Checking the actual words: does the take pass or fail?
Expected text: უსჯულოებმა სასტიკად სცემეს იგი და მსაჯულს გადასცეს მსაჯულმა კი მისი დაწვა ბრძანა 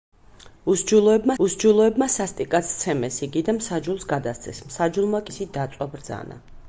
fail